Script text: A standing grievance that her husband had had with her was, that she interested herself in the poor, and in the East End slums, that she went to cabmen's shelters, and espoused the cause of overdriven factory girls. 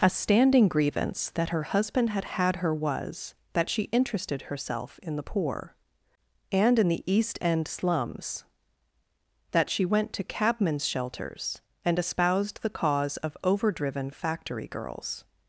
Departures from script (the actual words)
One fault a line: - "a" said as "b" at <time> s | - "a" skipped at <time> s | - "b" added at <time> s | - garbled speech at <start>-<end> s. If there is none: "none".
- "with" skipped at 2.6 s